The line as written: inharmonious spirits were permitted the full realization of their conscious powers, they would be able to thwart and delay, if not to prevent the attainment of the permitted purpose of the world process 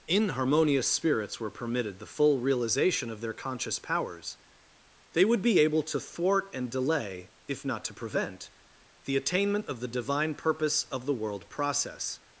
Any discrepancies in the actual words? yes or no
yes